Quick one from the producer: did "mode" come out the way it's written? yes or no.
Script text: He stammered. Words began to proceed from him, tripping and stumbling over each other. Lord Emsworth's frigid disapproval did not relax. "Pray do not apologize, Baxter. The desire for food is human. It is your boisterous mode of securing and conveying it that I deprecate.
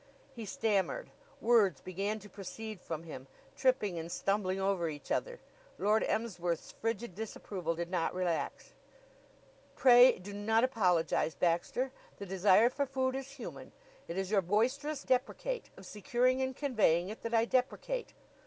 no